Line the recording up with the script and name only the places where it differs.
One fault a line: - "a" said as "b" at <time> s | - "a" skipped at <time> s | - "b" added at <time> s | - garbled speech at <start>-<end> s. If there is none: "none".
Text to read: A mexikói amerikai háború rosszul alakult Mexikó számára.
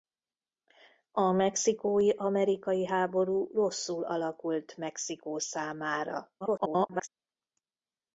- garbled speech at 6.4-7.1 s